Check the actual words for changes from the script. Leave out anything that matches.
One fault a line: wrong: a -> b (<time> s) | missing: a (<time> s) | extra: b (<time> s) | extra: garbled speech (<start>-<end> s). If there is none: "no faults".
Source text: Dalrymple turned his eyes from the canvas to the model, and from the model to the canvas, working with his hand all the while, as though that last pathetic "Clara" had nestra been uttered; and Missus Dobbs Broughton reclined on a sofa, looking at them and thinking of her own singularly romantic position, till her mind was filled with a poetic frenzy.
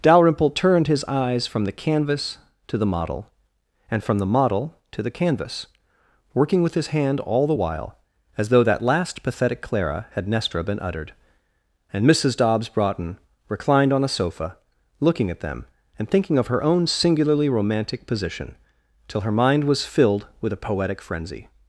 no faults